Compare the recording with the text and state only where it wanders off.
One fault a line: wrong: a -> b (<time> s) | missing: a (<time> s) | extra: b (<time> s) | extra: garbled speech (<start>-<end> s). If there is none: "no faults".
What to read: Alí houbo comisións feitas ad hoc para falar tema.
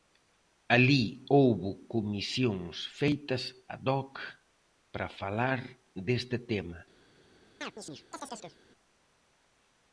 extra: deste (6.1 s)